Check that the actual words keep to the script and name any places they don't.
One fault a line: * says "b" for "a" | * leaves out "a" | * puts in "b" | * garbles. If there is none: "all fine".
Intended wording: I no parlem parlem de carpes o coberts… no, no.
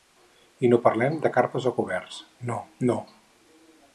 * leaves out "parlem"